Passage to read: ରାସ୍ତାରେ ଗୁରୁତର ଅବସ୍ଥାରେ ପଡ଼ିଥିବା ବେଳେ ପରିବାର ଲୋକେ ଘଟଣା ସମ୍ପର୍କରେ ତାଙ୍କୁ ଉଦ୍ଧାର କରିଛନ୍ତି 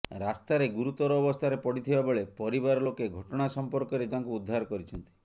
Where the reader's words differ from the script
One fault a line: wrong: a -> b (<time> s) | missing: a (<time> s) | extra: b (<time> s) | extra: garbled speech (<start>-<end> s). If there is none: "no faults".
no faults